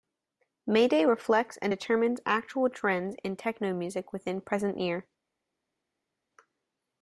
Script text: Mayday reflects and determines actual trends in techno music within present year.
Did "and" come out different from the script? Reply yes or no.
no